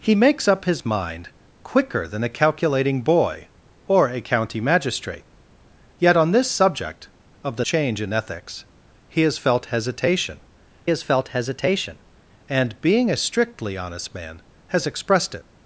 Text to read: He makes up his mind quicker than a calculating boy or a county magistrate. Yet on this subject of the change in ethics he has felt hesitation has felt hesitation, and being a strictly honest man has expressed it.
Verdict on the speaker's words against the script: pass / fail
pass